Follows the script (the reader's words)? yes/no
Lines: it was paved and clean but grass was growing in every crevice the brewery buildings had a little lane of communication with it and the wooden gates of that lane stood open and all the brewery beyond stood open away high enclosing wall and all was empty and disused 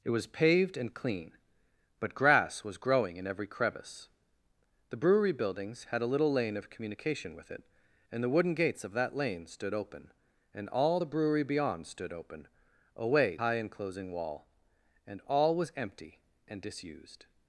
yes